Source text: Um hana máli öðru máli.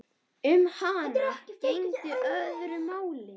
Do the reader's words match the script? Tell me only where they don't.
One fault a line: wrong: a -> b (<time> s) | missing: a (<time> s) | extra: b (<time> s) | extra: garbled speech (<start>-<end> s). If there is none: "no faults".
wrong: máli -> gegndi (1.6 s)